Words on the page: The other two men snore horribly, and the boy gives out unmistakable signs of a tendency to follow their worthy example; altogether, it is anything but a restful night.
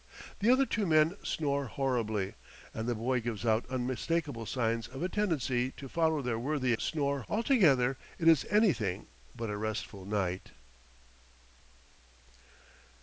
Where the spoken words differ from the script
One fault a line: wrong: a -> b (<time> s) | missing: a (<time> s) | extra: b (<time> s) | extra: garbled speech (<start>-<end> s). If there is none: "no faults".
wrong: example -> snore (6.8 s)